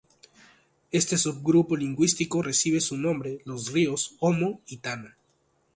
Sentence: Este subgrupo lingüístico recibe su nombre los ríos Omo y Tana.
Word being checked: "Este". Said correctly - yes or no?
yes